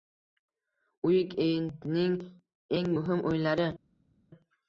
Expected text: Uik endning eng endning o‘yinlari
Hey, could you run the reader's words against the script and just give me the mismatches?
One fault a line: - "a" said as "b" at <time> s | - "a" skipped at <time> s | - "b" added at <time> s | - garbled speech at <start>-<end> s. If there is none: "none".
- "endning" said as "muhim" at 2.9 s